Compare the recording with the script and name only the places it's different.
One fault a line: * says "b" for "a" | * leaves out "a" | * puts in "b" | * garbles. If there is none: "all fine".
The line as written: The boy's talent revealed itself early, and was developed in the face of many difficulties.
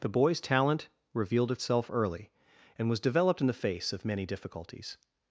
all fine